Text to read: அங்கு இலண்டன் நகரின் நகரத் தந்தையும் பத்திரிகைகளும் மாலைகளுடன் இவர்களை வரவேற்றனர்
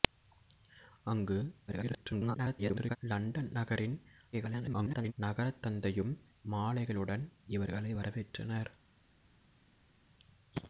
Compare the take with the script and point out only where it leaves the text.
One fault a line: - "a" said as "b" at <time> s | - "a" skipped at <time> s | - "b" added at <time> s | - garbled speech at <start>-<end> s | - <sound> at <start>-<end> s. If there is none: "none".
- garbled speech at 1.7-3.0 s
- garbled speech at 4.3-5.1 s
- "பத்திரிகைகளும்" skipped at 6.1 s